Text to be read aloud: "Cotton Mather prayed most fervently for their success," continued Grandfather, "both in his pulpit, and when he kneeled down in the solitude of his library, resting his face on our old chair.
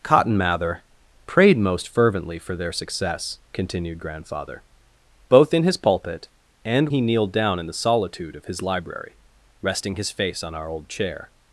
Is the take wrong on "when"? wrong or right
wrong